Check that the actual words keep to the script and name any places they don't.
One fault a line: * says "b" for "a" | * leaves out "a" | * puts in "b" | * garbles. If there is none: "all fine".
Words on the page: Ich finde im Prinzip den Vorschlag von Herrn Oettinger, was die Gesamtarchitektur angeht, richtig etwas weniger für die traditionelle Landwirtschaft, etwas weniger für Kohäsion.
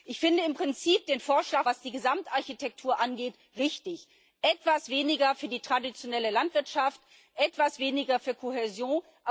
* leaves out "von Herrn Oettinger"